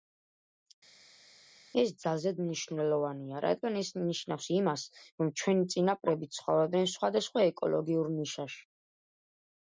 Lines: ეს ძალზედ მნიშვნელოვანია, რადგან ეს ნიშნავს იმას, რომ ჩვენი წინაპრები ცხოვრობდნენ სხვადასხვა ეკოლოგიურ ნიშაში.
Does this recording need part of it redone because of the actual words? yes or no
no